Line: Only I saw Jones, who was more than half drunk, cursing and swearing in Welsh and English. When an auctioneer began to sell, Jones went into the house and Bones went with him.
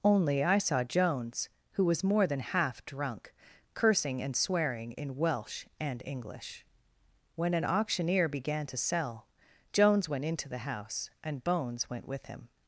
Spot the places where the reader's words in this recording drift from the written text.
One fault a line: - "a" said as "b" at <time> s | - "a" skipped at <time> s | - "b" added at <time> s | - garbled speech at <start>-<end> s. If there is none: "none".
none